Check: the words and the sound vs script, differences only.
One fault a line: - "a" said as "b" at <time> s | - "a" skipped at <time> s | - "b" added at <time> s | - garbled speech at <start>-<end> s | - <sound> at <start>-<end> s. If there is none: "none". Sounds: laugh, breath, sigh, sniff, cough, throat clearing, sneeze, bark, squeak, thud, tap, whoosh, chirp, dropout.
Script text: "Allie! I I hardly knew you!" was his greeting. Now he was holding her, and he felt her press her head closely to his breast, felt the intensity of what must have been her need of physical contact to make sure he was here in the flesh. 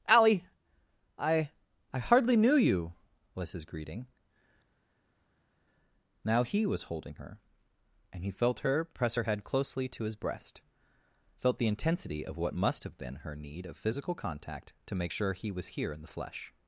none